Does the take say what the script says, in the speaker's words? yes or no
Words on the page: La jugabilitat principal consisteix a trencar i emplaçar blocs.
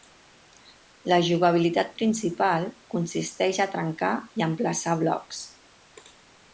yes